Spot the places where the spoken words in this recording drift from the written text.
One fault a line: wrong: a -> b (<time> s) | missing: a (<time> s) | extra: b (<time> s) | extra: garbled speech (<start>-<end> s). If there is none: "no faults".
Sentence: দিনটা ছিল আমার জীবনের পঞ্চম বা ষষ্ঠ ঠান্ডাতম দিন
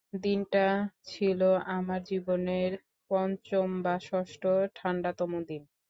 no faults